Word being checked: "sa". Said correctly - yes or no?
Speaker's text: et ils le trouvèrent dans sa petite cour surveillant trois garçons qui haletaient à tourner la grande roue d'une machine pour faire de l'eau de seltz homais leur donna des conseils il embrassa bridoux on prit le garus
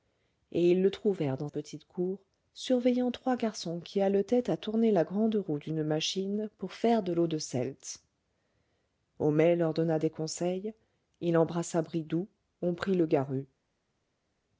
no